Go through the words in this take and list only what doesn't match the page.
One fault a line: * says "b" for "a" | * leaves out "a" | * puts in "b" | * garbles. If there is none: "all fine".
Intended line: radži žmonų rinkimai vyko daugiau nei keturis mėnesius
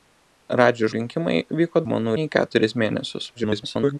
* leaves out "žmonų"
* says "žmonų" for "daugiau"
* garbles